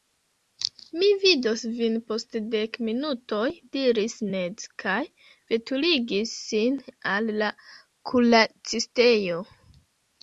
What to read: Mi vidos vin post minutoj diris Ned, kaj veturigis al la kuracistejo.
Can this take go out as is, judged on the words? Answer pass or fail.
fail